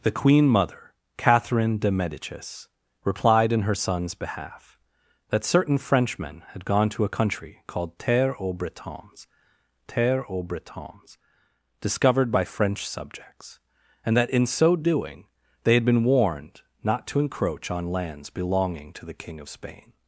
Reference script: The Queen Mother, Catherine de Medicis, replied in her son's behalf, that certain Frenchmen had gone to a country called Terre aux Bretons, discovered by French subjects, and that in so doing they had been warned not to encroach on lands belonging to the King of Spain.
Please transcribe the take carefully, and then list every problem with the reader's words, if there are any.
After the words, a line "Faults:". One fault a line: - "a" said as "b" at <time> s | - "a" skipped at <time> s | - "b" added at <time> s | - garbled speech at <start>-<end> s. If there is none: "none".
The Queen Mother, Catherine de Medicis, replied in her son's behalf, that certain Frenchmen had gone to a country called Terre aux Bretons Terre aux Bretons, discovered by French subjects, and that in so doing they had been warned not to encroach on lands belonging to the King of Spain.
Faults:
- "Terre aux Bretons" added at 9.9 s